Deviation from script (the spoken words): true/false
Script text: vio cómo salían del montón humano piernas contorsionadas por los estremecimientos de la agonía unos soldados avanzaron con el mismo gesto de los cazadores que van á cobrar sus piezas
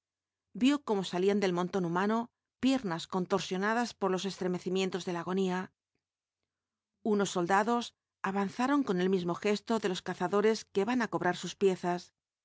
false